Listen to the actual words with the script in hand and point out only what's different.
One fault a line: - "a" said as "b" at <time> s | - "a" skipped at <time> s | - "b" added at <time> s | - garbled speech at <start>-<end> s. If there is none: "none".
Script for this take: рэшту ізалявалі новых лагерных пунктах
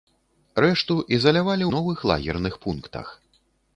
none